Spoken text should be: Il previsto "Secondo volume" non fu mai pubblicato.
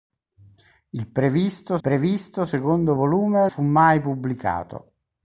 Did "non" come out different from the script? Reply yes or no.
yes